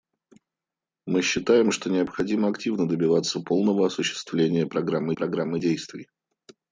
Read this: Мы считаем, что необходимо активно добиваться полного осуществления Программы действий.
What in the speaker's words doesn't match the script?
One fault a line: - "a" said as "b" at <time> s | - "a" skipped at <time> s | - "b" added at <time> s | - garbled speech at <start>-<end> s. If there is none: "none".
- "Программы" added at 5.1 s